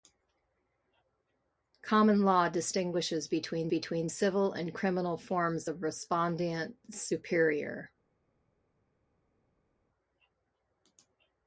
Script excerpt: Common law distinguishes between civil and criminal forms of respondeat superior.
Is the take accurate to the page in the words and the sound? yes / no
no